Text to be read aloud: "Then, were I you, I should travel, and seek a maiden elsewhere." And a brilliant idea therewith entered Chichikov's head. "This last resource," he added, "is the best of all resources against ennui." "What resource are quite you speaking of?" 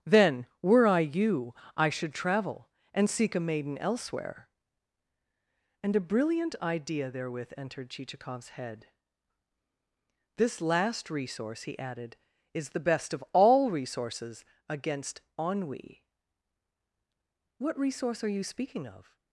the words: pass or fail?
fail